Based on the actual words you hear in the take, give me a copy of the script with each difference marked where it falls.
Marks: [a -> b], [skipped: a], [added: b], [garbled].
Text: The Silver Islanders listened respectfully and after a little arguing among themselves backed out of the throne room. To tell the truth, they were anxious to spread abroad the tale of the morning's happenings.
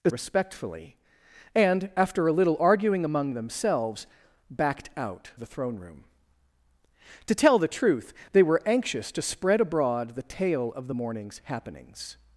The [skipped: Silver Islanders listened] respectfully and after a little arguing among themselves backed out [skipped: of] the throne room. To tell the truth, they were anxious to spread abroad the tale of the morning's happenings.